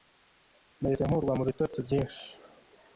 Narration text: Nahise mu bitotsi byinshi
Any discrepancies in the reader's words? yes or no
yes